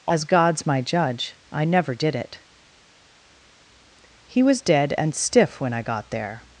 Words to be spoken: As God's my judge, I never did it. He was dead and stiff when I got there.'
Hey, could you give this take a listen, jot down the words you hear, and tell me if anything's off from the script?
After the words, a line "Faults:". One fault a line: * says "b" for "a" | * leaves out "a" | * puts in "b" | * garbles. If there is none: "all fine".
As God's my judge, I never did it. He was dead and stiff when I got there.'
Faults:
all fine